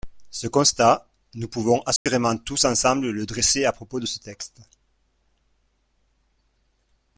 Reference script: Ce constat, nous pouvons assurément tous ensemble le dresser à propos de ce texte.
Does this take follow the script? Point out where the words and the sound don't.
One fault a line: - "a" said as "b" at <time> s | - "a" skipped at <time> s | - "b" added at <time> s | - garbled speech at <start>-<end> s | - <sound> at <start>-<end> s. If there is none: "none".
- dropout at 2.0-2.1 s